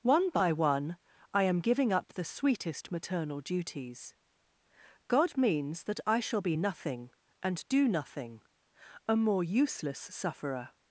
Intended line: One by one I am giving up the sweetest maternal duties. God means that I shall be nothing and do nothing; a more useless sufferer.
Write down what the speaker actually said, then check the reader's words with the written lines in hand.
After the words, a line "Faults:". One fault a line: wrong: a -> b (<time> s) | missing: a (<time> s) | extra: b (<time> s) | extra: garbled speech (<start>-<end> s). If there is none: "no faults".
One by one I am giving up the sweetest maternal duties. God means that I shall be nothing and do nothing; a more useless sufferer.
Faults:
no faults